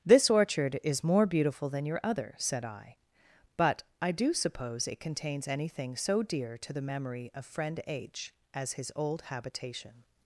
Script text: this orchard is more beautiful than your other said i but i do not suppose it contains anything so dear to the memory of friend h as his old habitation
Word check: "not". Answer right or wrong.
wrong